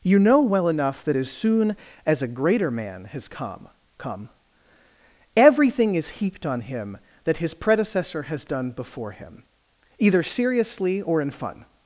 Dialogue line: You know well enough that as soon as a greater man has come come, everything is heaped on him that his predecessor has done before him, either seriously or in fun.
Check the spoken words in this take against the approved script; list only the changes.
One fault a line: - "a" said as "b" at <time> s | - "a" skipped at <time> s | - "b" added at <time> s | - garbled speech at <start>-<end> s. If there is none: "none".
none